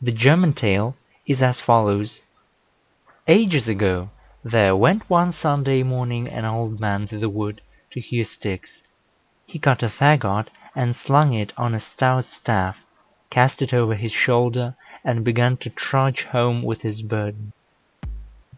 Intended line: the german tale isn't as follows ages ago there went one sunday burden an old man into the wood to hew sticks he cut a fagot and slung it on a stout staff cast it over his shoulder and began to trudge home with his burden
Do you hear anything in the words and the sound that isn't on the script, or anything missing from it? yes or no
yes